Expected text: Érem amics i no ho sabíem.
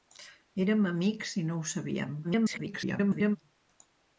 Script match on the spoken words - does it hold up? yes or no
no